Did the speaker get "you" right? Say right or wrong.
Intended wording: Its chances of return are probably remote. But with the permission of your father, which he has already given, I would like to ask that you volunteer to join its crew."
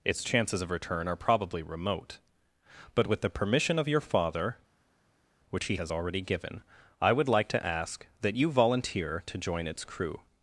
right